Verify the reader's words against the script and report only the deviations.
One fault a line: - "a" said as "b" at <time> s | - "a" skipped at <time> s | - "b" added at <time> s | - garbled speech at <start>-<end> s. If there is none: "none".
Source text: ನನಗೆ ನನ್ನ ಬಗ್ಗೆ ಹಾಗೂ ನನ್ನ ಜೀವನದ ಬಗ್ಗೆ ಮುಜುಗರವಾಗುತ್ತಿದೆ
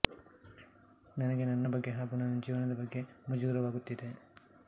none